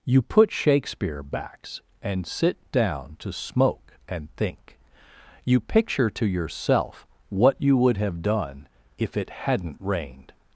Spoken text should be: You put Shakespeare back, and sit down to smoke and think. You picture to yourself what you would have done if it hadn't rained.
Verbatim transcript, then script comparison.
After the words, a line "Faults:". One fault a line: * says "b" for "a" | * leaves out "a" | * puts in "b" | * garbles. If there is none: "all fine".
You put Shakespeare backs, and sit down to smoke and think. You picture to yourself what you would have done if it hadn't rained.
Faults:
* says "backs" for "back"